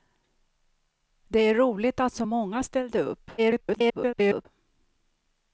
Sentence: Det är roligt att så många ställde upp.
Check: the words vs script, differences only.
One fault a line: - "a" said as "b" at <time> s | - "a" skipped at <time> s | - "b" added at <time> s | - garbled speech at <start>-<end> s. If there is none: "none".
- garbled speech at 3.4-4.5 s